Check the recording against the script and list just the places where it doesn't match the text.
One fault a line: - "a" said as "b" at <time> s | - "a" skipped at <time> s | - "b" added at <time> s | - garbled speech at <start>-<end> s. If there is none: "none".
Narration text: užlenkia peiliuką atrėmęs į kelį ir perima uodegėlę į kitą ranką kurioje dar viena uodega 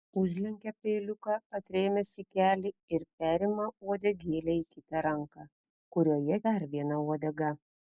none